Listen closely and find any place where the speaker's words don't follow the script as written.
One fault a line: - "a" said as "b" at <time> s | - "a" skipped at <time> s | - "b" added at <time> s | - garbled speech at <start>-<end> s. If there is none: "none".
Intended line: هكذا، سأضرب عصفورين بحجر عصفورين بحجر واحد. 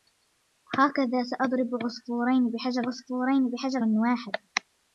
none